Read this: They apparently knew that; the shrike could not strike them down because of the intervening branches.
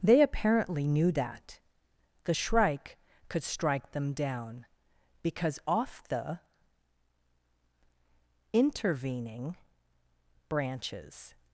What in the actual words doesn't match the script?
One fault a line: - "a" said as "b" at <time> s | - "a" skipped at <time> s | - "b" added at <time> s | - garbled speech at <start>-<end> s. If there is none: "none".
- "not" skipped at 3.4 s
- "of" said as "off" at 5.7 s